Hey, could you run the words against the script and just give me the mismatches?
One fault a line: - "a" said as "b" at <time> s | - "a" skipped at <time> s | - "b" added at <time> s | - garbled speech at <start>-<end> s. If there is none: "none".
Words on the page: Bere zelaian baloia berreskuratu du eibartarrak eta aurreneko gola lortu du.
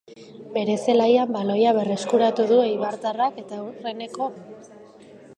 - "gola lortu" skipped at 4.3 s